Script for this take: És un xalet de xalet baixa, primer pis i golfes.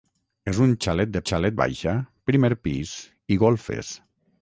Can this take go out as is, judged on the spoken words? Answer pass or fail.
pass